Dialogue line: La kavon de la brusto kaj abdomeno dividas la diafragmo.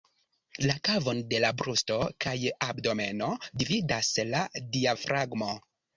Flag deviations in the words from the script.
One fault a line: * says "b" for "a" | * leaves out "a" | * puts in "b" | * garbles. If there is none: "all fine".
all fine